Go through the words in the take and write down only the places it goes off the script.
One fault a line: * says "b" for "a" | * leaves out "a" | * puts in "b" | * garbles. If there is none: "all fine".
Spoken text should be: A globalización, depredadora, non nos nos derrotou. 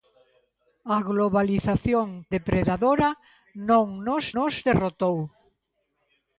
all fine